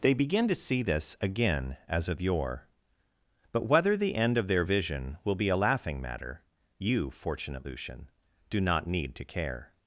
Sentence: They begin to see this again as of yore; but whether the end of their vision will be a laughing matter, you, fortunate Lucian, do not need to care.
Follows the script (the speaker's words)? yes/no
yes